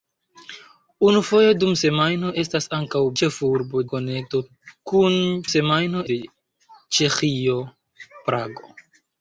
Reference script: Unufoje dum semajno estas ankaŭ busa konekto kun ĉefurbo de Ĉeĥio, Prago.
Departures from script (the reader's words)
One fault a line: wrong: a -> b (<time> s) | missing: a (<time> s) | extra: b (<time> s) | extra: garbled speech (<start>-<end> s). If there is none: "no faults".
wrong: busa -> ĉefurbo (3.2 s)
wrong: ĉefurbo -> semajno (5.5 s)